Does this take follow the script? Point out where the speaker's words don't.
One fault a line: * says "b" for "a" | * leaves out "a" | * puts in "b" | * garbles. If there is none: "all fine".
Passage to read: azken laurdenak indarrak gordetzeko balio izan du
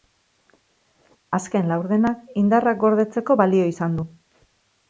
all fine